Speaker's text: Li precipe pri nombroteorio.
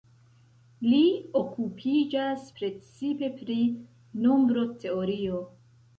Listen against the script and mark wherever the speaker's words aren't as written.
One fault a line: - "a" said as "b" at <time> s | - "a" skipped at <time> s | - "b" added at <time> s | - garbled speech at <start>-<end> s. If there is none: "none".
- "okupiĝas" added at 1.4 s